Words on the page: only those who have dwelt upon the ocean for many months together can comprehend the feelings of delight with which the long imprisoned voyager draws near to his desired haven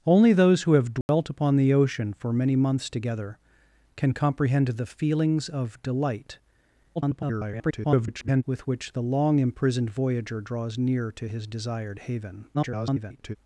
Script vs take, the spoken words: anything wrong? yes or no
yes